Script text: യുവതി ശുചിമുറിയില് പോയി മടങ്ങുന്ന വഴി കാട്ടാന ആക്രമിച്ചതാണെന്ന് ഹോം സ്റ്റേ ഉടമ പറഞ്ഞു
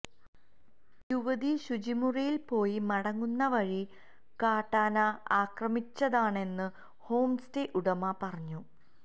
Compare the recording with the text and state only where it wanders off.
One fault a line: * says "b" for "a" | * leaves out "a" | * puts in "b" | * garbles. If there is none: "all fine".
all fine